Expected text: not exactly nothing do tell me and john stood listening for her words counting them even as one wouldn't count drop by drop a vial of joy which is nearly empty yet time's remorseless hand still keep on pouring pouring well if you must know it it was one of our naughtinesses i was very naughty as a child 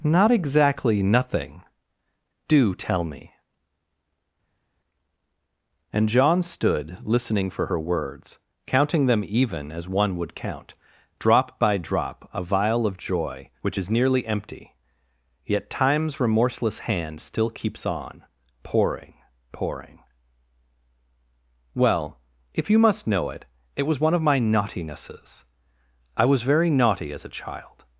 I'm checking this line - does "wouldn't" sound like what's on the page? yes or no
no